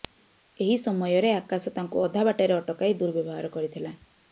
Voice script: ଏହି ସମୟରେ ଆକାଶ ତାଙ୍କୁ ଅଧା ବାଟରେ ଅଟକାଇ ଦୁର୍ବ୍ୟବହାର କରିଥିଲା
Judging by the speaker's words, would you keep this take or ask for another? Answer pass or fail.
pass